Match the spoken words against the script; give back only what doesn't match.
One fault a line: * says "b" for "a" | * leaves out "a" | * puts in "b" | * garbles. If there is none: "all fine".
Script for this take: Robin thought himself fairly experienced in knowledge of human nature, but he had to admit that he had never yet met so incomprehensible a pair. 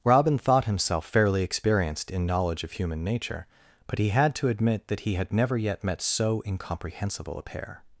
all fine